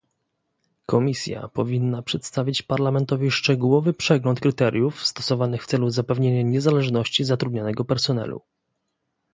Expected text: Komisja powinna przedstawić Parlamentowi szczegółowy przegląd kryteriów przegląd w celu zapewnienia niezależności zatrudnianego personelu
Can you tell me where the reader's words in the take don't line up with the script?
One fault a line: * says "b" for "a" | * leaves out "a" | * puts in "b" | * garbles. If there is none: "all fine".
* says "stosowanych" for "przegląd"